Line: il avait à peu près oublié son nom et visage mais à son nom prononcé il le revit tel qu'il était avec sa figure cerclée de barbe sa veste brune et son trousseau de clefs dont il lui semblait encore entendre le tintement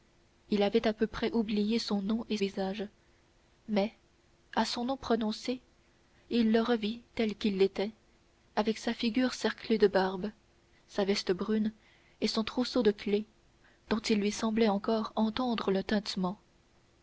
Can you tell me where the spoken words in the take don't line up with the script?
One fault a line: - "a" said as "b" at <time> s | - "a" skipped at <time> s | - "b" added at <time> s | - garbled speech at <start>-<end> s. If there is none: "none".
none